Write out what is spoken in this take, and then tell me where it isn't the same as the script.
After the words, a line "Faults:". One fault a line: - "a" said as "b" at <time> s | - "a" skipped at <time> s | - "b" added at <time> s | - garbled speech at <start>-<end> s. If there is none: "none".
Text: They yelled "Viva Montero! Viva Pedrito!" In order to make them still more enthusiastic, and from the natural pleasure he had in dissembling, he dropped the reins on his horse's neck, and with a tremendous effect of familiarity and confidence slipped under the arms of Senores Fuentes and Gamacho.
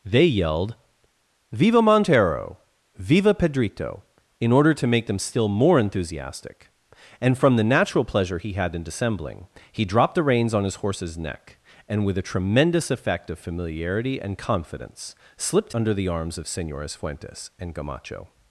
They yelled "Viva Montero! Viva Pedrito!" In order to make them still more enthusiastic, and from the natural pleasure he had in dissembling, he dropped the reins on his horse's neck, and with a tremendous effect of familiarity and confidence slipped under the arms of Senores Fuentes and Gamacho.
Faults:
none